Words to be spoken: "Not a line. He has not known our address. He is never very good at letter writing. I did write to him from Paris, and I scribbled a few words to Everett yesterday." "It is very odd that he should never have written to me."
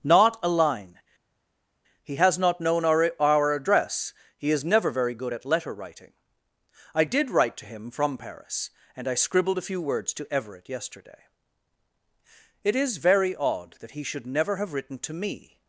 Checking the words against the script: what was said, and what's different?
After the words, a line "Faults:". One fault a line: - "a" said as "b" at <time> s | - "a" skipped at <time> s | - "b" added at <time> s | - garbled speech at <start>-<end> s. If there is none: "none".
"Not a line. He has not known our our address. He is never very good at letter writing. I did write to him from Paris, and I scribbled a few words to Everett yesterday." "It is very odd that he should never have written to me."
Faults:
- "our" added at 3.2 s